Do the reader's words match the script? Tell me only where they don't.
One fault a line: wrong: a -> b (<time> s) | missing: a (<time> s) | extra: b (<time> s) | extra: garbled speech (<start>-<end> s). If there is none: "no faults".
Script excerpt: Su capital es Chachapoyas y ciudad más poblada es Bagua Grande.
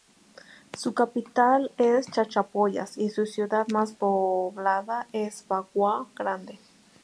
extra: su (3.1 s)